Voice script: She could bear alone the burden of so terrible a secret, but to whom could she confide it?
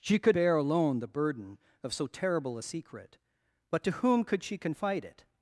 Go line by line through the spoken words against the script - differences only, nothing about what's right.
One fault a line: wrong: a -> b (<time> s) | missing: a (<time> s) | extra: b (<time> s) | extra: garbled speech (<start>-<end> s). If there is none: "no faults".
no faults